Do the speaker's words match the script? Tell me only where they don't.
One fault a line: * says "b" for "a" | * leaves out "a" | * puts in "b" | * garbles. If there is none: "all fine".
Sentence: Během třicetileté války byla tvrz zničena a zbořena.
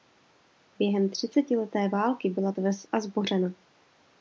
* leaves out "zničena"